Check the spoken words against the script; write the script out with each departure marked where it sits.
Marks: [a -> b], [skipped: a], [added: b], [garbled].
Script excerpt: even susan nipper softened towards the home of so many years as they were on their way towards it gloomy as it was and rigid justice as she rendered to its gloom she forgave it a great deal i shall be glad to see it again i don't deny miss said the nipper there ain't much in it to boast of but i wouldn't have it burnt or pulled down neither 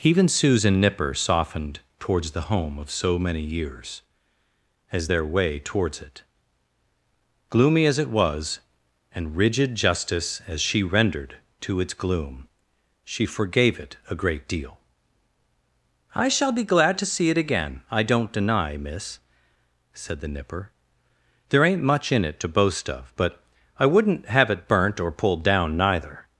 even susan nipper softened towards the home of so many years as [skipped: they were on] their way towards it gloomy as it was and rigid justice as she rendered to its gloom she forgave it a great deal i shall be glad to see it again i don't deny miss said the nipper there ain't much in it to boast of but i wouldn't have it burnt or pulled down neither